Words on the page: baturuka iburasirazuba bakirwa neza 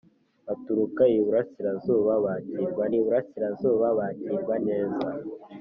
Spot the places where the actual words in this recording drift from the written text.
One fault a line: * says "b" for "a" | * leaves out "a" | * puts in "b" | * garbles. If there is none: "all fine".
* puts in "iburasirazuba bakirwa"